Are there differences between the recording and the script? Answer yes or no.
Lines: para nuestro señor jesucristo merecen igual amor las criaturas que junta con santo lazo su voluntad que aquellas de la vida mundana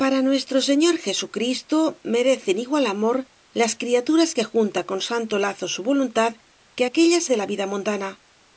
no